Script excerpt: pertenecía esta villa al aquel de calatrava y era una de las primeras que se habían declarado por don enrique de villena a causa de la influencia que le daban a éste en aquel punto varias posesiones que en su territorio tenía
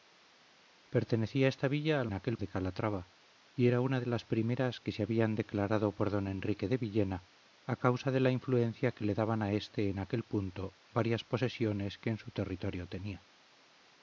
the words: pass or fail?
pass